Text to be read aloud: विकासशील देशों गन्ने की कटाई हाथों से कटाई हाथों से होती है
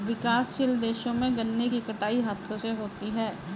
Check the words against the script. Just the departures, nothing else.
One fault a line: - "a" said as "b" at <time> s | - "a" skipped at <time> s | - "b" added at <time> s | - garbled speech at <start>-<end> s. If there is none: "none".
- "में" added at 1.1 s
- "कटाई हाथों से" skipped at 2.7 s